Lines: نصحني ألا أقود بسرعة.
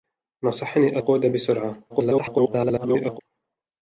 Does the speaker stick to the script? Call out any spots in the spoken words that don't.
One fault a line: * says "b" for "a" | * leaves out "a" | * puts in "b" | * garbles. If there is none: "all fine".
* leaves out "ألا"
* garbles